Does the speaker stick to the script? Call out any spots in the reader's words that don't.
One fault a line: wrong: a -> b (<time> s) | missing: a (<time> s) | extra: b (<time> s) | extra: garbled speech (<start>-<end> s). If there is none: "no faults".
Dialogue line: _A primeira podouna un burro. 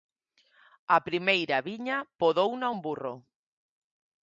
extra: viña (1.7 s)